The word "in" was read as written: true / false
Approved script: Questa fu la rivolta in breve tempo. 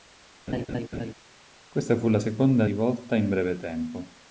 true